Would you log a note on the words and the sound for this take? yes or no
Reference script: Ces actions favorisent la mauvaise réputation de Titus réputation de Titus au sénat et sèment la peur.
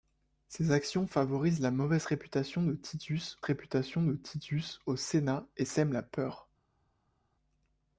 no